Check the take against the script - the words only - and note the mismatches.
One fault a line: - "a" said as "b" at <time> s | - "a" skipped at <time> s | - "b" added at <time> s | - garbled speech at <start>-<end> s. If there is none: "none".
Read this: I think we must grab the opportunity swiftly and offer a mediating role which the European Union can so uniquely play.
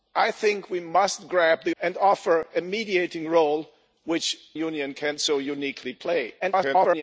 - "opportunity swiftly" skipped at 1.8 s
- "the European" skipped at 4.4 s
- garbled speech at 6.4-7.0 s